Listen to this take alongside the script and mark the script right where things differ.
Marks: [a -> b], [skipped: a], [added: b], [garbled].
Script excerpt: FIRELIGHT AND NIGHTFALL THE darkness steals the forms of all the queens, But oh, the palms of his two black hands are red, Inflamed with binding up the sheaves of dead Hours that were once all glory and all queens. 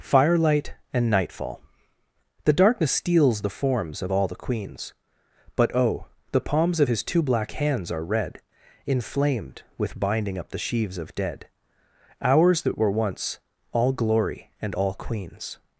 FIRELIGHT AND NIGHTFALL THE darkness steals the forms of all the queens, But oh, the palms of his two black hands are red, Inflamed with binding up the sheaves of dead Hours that were once all glory and all queens.